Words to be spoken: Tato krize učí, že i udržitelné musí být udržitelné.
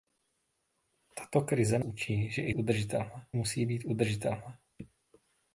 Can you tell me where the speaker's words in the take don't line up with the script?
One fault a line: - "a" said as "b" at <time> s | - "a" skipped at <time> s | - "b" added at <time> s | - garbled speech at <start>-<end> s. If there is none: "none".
none